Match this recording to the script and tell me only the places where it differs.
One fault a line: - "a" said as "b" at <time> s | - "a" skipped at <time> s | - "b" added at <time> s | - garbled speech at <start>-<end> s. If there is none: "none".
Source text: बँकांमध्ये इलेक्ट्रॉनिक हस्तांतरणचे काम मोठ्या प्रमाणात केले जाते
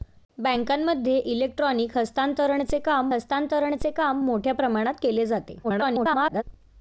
- "हस्तांतरणचे काम" added at 3.1 s
- garbled speech at 5.6-6.4 s